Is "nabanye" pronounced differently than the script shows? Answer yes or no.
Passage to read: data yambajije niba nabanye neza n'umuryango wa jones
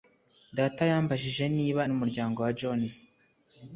yes